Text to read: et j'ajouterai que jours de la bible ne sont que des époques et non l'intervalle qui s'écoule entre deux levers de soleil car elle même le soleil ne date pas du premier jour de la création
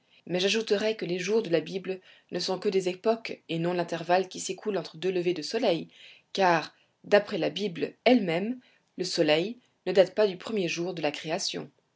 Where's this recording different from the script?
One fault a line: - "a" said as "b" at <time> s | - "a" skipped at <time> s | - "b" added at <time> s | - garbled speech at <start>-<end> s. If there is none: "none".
- "et" said as "mais" at 0.2 s
- "les" added at 1.1 s
- "d'après la bible" added at 7.0 s